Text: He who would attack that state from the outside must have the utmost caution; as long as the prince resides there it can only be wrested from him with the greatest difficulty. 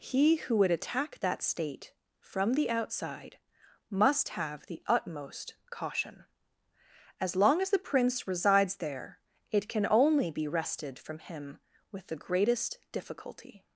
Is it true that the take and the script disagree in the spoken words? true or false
false